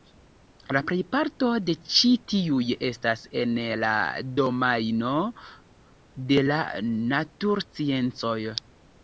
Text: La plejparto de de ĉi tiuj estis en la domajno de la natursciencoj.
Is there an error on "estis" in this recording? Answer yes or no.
yes